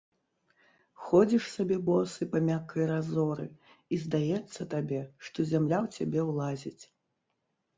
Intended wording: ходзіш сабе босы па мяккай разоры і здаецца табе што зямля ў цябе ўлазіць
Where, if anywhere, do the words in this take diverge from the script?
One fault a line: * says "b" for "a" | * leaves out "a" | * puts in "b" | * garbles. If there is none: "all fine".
all fine